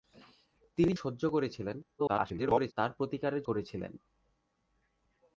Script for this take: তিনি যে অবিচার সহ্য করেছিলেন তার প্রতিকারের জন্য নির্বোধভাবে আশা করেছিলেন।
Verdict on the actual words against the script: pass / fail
fail